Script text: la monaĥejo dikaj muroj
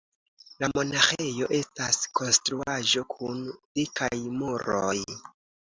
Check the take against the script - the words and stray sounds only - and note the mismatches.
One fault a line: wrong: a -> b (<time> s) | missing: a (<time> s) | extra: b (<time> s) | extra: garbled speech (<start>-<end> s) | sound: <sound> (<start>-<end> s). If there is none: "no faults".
extra: estas konstruaĵo kun (1.6 s)